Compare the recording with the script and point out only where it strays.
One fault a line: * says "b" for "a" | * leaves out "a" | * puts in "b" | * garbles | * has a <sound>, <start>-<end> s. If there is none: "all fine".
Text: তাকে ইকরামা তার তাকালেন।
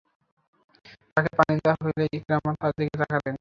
* puts in "পানি দেয়া হলে"
* puts in "দিকে"